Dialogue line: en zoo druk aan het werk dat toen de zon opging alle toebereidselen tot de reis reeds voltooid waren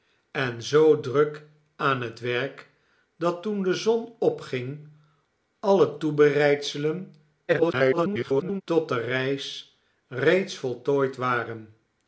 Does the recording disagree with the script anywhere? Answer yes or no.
yes